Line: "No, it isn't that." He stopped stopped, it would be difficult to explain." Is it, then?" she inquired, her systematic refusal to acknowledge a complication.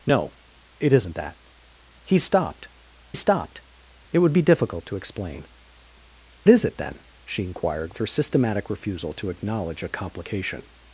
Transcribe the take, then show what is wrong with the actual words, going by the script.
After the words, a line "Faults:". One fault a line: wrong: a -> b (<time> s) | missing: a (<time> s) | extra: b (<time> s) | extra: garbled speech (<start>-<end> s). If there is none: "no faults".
"No, it isn't that." He stopped stopped, it would be difficult to explain." Is it, then?" she inquired, her systematic refusal to acknowledge a complication.
Faults:
no faults